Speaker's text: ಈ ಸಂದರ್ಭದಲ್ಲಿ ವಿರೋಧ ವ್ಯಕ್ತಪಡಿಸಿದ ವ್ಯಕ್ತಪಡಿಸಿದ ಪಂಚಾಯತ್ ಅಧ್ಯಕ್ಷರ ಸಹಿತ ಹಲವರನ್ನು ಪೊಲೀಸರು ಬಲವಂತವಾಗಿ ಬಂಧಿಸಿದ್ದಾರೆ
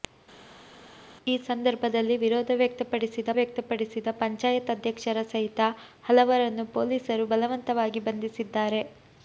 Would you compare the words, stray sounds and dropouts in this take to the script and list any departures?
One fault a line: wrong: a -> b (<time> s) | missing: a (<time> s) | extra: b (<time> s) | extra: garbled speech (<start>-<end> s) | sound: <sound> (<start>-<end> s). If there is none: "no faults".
no faults